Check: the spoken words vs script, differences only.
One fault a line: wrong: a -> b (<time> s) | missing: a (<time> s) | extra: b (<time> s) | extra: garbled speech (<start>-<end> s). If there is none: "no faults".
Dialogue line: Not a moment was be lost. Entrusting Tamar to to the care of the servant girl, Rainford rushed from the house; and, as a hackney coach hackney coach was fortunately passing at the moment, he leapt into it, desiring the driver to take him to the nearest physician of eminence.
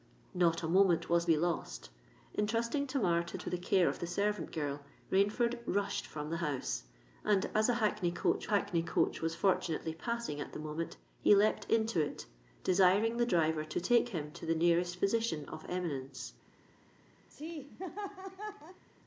no faults